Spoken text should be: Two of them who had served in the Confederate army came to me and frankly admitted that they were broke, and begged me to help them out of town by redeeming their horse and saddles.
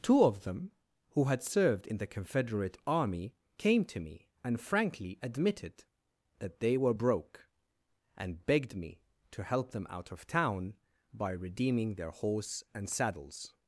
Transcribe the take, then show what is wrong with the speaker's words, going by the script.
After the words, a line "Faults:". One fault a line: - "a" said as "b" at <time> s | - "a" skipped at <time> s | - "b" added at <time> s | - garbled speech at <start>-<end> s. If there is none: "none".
Two of them who had served in the Confederate army came to me and frankly admitted that they were broke, and begged me to help them out of town by redeeming their horse and saddles.
Faults:
none